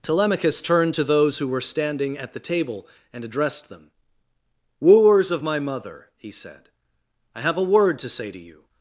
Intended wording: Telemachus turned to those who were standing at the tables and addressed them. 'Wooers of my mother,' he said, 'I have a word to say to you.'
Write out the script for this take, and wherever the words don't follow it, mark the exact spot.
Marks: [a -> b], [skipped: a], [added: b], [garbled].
Telemachus turned to those who were standing at the [tables -> table] and addressed them. 'Wooers of my mother,' he said, 'I have a word to say to you.'